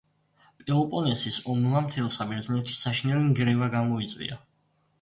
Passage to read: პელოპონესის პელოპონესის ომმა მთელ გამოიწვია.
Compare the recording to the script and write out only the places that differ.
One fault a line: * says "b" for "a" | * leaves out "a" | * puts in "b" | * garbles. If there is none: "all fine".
* leaves out "პელოპონესის"
* puts in "საბერძნეთში საშინელი ნგრევა"